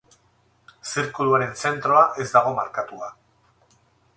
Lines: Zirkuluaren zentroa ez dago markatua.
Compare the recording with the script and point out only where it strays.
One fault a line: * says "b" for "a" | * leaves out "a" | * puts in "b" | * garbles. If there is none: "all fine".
all fine